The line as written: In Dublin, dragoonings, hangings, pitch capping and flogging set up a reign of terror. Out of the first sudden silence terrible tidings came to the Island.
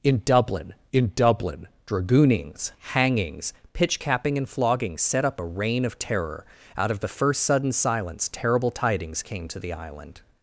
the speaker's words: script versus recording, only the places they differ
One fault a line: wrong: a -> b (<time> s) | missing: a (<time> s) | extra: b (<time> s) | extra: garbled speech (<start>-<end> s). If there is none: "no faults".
extra: in Dublin (0.9 s)